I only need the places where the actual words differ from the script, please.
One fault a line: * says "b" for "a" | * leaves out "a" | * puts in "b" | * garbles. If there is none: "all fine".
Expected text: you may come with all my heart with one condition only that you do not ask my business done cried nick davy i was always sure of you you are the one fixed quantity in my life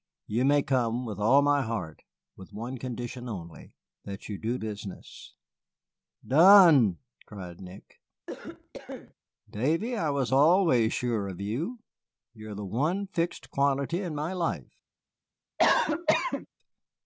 * leaves out "not ask my"